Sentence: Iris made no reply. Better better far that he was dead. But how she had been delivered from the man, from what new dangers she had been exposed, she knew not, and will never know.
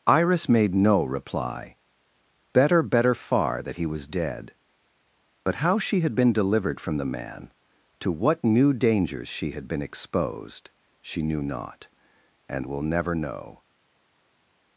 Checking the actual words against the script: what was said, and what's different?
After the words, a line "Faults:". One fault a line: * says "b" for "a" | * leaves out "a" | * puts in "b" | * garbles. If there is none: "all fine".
Iris made no reply. Better better far that he was dead. But how she had been delivered from the man, to what new dangers she had been exposed, she knew not, and will never know.
Faults:
* says "to" for "from"